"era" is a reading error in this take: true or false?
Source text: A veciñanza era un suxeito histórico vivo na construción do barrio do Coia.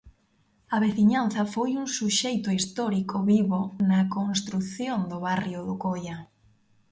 true